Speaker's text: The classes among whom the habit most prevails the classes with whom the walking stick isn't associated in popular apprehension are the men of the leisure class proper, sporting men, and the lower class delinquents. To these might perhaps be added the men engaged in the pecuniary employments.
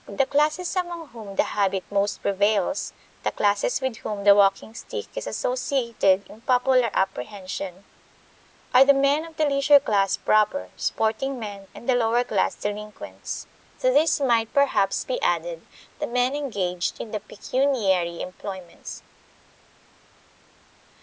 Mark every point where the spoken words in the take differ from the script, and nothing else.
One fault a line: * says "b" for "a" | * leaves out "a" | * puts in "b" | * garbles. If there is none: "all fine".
* says "is" for "isn't"